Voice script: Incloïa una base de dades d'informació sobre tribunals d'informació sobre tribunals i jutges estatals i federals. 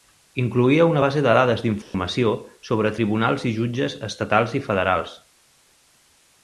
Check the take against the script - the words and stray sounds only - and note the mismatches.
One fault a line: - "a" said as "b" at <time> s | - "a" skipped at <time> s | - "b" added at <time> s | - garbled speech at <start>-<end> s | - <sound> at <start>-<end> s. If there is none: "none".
- dropout at 1.8-1.9 s
- "d'informació sobre tribunals" skipped at 3.5 s